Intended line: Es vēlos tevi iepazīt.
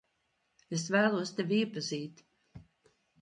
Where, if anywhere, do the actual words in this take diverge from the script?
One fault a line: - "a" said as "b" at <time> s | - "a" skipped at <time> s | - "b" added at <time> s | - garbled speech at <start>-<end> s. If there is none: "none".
none